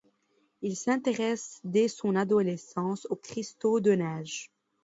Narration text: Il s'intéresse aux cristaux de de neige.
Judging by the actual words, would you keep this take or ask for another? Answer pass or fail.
fail